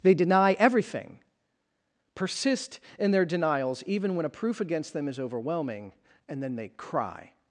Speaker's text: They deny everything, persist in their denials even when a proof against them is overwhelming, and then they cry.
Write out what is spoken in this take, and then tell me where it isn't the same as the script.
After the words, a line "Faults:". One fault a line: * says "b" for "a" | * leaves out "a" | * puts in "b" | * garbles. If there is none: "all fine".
They deny everything, persist in their denials even when a proof against them is overwhelming, and then they cry.
Faults:
all fine